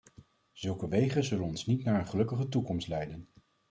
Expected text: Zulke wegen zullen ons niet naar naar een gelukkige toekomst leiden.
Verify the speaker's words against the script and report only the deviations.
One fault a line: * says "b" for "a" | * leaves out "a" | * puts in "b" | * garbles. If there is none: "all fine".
* leaves out "naar"